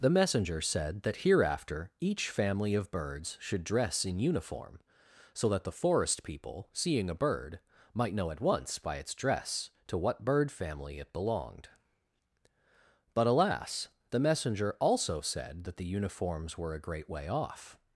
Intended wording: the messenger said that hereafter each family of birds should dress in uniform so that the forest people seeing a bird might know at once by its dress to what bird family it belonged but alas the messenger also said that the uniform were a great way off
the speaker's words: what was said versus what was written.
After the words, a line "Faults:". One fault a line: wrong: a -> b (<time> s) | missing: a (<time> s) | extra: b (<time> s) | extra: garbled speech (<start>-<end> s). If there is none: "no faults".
the messenger said that hereafter each family of birds should dress in uniform so that the forest people seeing a bird might know at once by its dress to what bird family it belonged but alas the messenger also said that the uniforms were a great way off
Faults:
wrong: uniform -> uniforms (15.8 s)